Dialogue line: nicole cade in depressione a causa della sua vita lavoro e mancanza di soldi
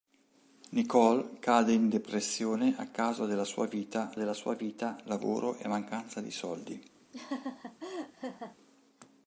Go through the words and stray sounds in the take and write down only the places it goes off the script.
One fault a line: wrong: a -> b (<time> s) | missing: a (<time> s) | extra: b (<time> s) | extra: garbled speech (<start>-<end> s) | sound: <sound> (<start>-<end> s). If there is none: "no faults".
extra: della sua vita (4.2 s)
sound: laugh (7.1-8.6 s)